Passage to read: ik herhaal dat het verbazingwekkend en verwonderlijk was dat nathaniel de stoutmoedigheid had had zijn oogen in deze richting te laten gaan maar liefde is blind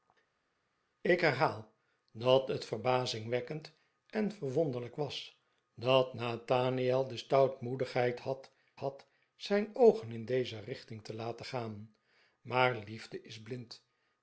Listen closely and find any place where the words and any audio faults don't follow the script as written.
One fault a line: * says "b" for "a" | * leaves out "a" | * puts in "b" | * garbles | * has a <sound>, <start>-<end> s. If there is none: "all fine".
all fine